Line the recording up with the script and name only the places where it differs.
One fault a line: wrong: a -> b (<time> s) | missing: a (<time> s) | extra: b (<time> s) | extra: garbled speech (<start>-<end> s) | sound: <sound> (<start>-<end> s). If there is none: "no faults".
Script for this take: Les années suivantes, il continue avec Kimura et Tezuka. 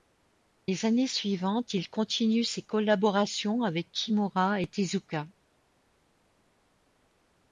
extra: ses collaborations (2.4 s)